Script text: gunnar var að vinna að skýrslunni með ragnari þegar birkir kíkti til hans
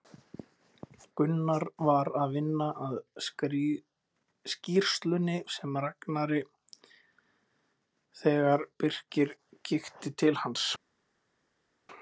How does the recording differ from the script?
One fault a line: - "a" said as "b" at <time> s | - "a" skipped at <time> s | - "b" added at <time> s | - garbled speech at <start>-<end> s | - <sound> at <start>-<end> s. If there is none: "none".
none